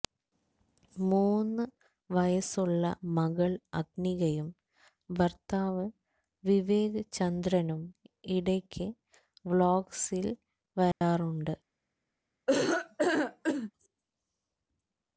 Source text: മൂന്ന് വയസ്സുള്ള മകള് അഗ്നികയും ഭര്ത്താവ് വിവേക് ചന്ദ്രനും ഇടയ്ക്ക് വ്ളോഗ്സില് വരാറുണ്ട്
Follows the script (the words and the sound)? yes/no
no